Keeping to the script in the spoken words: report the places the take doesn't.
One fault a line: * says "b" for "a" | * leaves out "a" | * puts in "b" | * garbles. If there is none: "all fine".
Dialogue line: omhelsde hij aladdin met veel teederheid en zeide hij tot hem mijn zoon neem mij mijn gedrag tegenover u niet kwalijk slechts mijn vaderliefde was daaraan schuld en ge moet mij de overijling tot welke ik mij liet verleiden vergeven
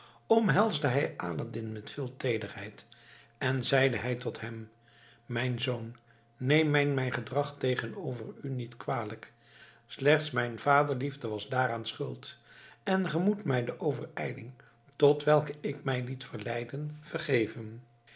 all fine